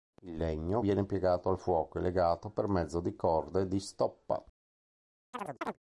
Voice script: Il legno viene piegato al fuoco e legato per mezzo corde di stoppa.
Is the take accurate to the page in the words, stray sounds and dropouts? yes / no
no